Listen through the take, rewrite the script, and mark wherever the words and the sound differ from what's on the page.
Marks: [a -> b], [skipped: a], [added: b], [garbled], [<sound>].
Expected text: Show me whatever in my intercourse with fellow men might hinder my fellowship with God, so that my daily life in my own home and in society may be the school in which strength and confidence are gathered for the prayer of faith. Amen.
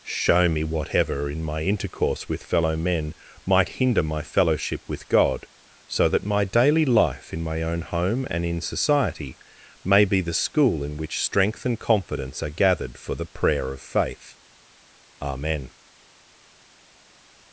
Show me whatever in my intercourse with fellow men might hinder my fellowship with God, so that my daily life in my own home and in society may be the school in which strength and confidence are gathered for the prayer of faith. Amen.